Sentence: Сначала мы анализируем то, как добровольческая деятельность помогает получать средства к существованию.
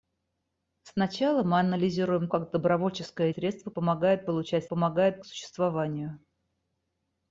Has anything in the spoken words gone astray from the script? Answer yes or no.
yes